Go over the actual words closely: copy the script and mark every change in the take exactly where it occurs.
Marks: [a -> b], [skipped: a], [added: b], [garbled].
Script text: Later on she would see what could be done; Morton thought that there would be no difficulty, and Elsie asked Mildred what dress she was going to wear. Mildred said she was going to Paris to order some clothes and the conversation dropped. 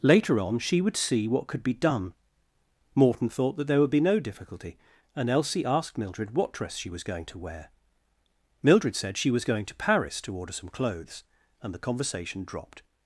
Later on she would see what could be done; Morton thought that there would be no difficulty, and Elsie asked Mildred what dress she was going to wear. Mildred said she was going to Paris to order some clothes and the conversation dropped.